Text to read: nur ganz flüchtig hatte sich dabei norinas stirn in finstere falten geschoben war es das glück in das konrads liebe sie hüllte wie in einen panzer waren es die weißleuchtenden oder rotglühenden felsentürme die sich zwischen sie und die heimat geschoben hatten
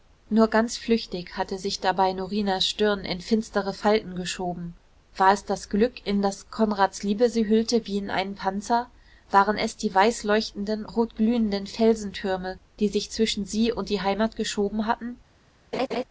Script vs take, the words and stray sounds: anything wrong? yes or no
yes